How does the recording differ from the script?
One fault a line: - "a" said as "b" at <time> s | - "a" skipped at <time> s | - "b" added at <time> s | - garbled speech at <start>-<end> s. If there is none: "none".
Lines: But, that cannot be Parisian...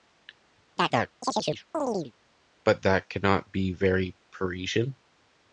- "very" added at 3.7 s